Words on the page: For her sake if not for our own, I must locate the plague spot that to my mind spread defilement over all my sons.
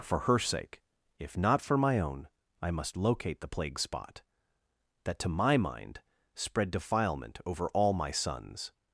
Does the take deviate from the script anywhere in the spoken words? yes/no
yes